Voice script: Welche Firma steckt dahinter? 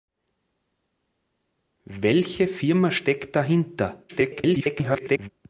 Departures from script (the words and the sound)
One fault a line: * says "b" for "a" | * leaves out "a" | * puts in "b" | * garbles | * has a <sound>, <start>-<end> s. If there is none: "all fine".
* garbles